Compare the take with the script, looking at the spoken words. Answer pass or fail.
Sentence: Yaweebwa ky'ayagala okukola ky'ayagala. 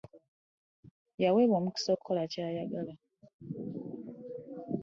fail